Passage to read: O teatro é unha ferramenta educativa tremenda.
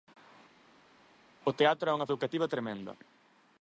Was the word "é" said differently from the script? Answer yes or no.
no